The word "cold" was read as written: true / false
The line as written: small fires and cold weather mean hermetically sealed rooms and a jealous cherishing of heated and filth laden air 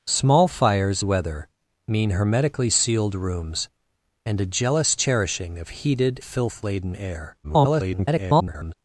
false